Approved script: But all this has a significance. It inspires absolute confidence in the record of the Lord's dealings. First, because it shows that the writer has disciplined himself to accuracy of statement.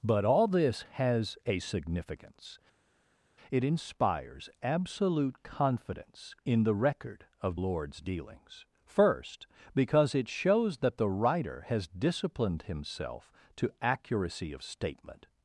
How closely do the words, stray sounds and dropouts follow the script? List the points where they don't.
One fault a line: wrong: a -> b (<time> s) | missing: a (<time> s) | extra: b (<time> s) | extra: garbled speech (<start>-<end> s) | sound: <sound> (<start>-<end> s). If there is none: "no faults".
missing: the (7.6 s)